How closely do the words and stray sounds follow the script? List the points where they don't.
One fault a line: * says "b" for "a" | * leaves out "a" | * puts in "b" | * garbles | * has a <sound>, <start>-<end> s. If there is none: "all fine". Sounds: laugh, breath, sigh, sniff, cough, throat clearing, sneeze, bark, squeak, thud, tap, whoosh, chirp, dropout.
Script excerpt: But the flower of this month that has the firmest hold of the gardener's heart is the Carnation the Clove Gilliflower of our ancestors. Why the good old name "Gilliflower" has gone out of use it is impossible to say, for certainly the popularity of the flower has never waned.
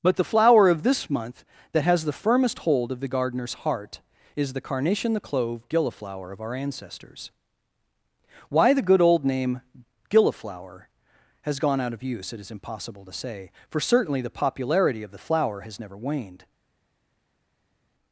all fine